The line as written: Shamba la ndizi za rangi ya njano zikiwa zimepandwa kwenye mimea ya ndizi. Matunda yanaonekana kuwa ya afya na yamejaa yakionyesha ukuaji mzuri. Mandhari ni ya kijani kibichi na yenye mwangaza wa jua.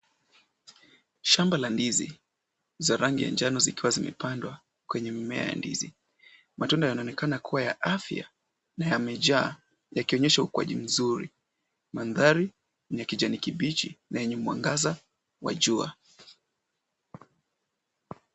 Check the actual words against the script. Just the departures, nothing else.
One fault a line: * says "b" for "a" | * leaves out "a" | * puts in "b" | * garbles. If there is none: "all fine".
all fine